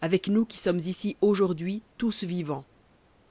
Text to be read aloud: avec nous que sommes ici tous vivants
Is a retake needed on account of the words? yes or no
yes